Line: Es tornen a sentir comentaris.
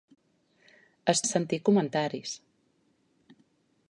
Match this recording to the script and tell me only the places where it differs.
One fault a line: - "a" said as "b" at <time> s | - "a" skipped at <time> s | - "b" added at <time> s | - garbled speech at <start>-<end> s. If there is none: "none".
- "tornen" skipped at 1.2 s